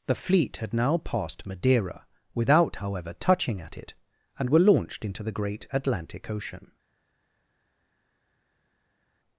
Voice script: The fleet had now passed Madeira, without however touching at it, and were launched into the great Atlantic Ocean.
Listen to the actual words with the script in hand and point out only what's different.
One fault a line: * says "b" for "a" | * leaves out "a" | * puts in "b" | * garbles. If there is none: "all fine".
all fine